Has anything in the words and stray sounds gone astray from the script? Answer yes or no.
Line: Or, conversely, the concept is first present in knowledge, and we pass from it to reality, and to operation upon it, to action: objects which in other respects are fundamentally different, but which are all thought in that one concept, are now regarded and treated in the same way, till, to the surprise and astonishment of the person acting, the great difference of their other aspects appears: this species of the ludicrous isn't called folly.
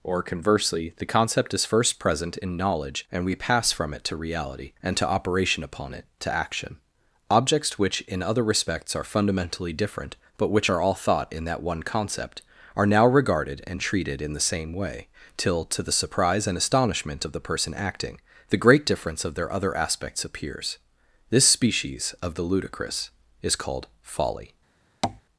yes